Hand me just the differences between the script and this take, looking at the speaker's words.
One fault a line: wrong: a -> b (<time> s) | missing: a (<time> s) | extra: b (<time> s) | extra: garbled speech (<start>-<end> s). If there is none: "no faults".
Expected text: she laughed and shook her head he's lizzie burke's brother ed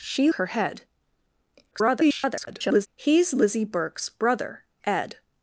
missing: laughed and shook (0.3 s)
extra: garbled speech (1.7-2.9 s)